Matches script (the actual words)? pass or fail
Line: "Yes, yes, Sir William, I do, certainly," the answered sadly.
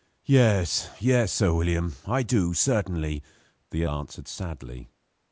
pass